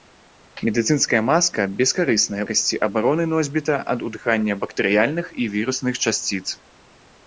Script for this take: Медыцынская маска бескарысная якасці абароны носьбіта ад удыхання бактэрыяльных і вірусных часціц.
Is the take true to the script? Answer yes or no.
yes